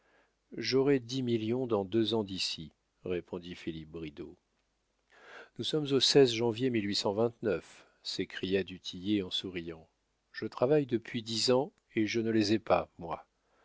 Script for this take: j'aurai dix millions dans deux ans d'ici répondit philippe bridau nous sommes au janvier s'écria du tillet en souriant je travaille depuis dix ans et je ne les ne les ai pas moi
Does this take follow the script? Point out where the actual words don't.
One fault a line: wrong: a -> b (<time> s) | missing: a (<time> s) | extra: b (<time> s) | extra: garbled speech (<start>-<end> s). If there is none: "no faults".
missing: ne les (12.5 s)